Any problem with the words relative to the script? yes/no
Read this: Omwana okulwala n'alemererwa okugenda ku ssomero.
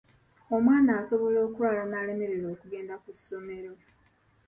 yes